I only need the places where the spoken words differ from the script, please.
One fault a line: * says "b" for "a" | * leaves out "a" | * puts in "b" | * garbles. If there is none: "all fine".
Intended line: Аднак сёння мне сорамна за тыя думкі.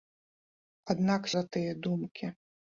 * leaves out "сёння мне сорамна"